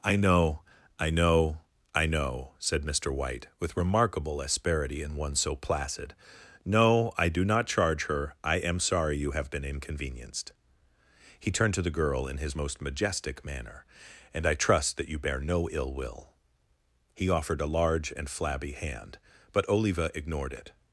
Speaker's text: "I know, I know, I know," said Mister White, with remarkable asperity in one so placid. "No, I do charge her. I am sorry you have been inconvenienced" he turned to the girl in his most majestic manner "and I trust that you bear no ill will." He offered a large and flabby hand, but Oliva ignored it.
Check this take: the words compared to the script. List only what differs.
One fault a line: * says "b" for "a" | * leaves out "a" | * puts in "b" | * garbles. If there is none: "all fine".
* puts in "not"